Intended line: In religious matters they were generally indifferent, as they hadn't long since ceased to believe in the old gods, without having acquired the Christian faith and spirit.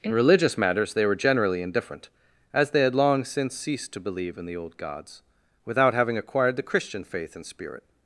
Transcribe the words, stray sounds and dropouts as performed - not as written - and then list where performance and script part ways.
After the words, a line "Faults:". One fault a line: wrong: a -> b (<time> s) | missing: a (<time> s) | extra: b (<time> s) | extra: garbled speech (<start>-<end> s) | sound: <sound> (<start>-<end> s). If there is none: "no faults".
In religious matters they were generally indifferent, as they had long since ceased to believe in the old gods, without having acquired the Christian faith and spirit.
Faults:
wrong: hadn't -> had (2.8 s)